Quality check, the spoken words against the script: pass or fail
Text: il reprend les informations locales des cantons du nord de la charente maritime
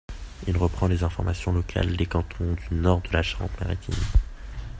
pass